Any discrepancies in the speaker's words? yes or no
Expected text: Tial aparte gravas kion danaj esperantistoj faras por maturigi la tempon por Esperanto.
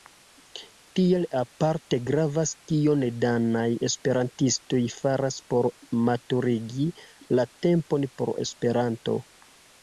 no